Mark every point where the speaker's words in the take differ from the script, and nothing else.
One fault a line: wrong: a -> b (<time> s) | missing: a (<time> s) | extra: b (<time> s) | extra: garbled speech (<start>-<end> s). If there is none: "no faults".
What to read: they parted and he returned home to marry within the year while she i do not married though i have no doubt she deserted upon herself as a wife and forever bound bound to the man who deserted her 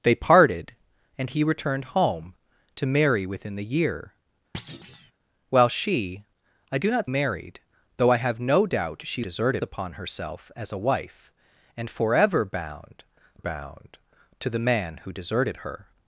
no faults